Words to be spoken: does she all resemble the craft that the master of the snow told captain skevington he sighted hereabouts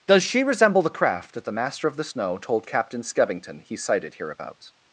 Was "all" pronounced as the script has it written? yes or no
no